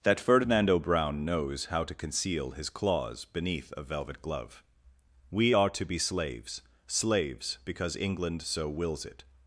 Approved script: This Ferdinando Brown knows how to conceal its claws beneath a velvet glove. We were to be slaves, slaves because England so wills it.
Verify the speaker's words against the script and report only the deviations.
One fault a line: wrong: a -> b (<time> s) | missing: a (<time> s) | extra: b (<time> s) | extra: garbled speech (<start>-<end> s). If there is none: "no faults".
wrong: This -> That (0.0 s)
wrong: its -> his (2.5 s)
wrong: were -> are (5.5 s)